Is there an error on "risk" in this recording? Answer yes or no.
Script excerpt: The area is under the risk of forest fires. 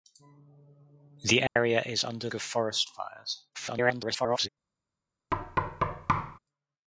yes